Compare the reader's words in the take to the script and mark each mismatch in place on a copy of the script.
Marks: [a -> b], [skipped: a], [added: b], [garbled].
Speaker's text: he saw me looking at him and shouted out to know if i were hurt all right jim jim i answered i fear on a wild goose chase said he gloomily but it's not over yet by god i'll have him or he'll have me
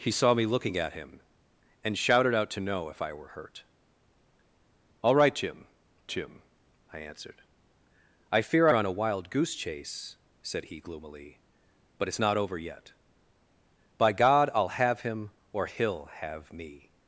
he saw me looking at him and shouted out to know if i were hurt all right jim jim i answered i fear on a wild goose chase said he gloomily but it's not over yet by god i'll have him or he'll have me